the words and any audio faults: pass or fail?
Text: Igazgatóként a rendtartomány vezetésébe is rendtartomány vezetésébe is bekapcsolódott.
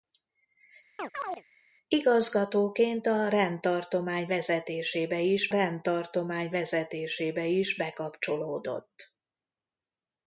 fail